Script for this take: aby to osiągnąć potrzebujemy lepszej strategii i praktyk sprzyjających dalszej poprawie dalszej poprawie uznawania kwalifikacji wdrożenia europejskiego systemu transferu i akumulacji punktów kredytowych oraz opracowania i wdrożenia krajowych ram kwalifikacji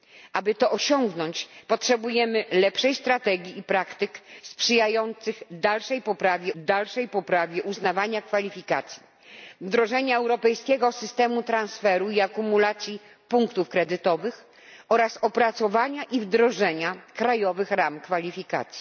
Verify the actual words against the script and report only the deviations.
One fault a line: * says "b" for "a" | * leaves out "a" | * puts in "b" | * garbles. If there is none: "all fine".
all fine